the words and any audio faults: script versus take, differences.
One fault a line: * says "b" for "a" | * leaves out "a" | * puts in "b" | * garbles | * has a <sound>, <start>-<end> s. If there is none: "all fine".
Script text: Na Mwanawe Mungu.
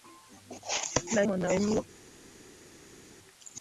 all fine